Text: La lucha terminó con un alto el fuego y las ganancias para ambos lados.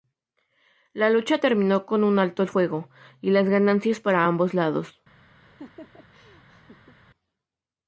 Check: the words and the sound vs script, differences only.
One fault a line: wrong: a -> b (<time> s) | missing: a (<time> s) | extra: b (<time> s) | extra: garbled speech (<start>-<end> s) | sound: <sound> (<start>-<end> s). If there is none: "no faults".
sound: laugh (5.4-7.0 s)